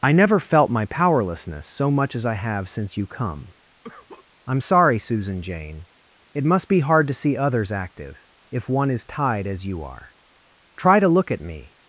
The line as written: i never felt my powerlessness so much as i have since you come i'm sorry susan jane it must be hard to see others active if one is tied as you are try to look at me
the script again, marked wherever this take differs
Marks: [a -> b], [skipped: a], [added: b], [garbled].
i never felt my powerlessness so much as i have since you come i'm sorry susan jane it must be hard to see others active if one is tied as you are try to look at me